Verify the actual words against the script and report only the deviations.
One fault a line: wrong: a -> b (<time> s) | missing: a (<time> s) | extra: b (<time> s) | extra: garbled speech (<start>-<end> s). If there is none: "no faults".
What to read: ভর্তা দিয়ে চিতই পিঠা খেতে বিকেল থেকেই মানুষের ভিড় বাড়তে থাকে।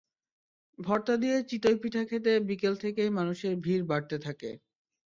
no faults